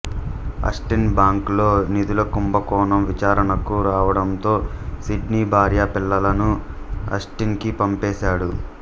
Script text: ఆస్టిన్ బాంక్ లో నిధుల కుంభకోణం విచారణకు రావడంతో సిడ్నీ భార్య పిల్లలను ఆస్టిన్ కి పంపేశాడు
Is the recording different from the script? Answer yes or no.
no